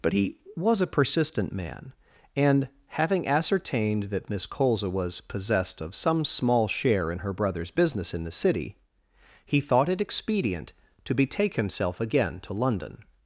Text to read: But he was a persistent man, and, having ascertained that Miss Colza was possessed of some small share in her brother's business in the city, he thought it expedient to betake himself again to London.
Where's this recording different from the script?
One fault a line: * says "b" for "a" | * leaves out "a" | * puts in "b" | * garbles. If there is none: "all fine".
all fine